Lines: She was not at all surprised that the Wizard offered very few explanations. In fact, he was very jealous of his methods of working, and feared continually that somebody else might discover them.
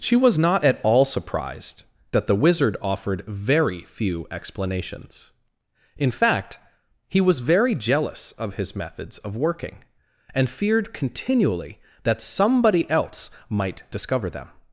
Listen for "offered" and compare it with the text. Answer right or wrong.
right